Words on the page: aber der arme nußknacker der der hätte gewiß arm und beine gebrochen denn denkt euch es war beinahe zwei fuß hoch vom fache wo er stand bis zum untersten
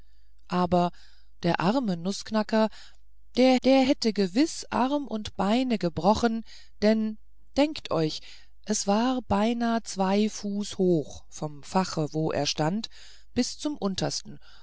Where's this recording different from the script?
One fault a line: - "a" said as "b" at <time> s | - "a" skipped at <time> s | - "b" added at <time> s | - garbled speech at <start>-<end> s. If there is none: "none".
none